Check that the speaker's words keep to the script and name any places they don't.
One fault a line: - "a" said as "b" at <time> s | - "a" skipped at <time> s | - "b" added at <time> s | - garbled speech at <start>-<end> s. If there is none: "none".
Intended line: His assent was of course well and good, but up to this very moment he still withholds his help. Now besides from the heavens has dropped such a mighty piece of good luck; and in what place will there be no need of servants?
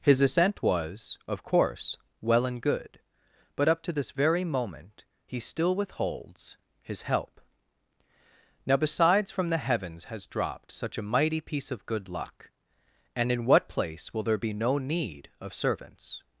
none